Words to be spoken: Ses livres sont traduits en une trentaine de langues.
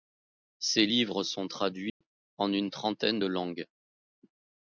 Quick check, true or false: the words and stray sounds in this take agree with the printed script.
false